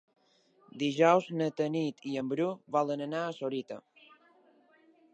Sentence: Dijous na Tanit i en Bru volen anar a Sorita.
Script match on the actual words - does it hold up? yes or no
yes